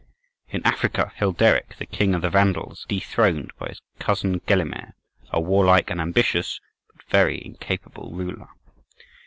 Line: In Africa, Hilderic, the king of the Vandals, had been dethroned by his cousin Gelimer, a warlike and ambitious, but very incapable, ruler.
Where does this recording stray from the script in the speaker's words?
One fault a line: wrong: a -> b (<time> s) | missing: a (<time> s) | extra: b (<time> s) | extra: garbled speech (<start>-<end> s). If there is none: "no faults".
missing: had been (2.9 s)